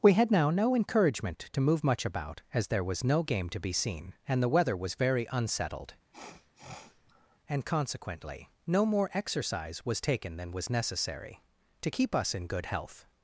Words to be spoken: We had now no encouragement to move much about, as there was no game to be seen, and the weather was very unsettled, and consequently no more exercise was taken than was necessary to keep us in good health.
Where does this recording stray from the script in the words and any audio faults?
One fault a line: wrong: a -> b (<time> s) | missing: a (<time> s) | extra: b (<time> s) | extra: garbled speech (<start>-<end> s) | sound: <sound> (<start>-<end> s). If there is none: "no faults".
sound: sniff (6.1-7.4 s)